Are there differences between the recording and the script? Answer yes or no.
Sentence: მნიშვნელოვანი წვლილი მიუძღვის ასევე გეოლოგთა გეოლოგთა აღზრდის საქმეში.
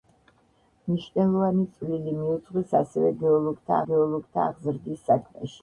no